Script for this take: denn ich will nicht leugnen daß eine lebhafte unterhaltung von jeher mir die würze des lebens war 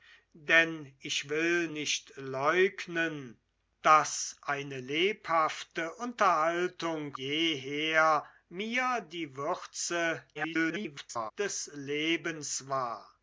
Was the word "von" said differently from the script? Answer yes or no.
yes